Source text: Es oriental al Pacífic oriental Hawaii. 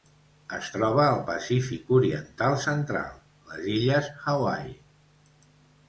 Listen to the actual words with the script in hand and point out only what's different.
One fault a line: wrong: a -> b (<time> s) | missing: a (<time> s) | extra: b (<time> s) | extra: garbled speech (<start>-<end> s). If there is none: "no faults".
wrong: oriental -> troba (0.7 s)
extra: central les illes (2.7 s)